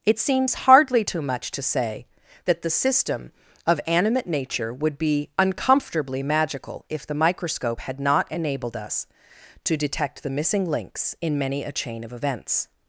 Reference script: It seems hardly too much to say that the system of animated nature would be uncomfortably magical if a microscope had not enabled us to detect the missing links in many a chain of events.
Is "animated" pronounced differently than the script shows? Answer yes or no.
yes